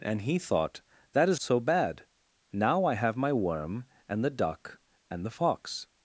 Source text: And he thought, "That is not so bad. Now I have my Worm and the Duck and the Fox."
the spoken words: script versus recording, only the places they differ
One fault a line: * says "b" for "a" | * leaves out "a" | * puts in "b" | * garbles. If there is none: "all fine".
* leaves out "not"